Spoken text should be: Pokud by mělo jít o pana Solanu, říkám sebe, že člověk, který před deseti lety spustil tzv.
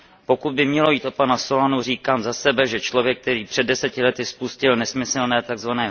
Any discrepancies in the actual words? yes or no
yes